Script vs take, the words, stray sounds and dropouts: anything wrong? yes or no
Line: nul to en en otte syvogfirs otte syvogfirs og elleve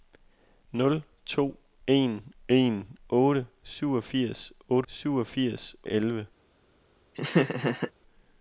yes